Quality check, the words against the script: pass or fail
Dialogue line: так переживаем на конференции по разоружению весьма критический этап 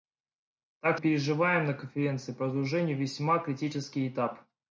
pass